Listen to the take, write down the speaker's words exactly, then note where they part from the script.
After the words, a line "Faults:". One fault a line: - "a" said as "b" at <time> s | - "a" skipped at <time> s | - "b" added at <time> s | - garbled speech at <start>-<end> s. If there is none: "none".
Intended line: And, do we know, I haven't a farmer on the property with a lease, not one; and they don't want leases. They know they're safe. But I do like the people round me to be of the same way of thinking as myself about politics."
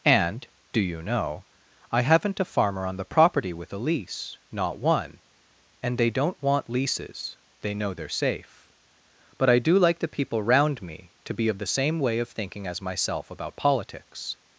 And, do you know, I haven't a farmer on the property with a lease, not one; and they don't want leases. They know they're safe. But I do like the people round me to be of the same way of thinking as myself about politics."
Faults:
- "we" said as "you" at 0.8 s